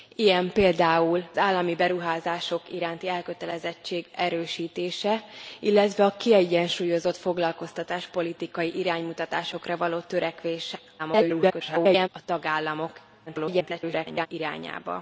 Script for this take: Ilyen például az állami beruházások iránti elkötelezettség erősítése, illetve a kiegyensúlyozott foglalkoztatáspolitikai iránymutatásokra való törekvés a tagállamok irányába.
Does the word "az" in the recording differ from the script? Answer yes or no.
yes